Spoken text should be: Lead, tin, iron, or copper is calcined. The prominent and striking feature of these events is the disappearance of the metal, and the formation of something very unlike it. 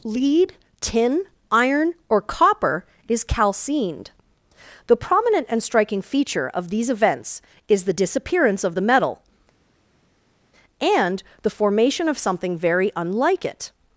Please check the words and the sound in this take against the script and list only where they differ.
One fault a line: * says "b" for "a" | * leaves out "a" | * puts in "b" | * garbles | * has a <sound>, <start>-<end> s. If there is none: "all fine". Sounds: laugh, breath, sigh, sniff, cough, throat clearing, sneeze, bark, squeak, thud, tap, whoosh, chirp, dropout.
all fine